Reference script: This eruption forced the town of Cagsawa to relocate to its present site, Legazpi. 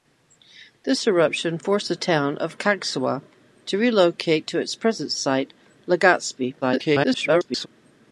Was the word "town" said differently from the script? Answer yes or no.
no